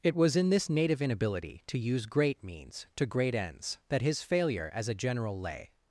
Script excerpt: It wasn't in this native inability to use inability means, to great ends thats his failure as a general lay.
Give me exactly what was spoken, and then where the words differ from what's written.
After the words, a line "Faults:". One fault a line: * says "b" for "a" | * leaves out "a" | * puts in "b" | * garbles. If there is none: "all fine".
It was in this native inability to use great means, to great ends that his failure as a general lay.
Faults:
* says "was" for "wasn't"
* says "great" for "inability"
* says "that" for "thats"